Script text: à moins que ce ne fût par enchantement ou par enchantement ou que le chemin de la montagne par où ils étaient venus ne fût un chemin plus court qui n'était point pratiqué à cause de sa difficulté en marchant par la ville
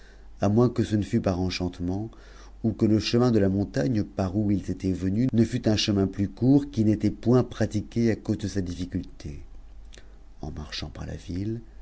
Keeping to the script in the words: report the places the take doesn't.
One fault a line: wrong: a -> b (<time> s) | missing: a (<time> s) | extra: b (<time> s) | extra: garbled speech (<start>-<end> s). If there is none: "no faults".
missing: par enchantement ou (2.7 s)